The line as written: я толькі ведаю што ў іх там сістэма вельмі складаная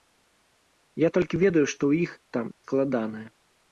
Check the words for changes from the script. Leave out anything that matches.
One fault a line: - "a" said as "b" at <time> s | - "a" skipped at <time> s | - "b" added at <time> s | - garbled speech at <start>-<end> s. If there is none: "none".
- "сістэма вельмі" skipped at 2.5 s